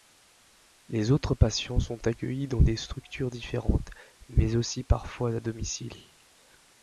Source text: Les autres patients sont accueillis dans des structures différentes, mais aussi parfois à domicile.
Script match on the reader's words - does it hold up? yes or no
yes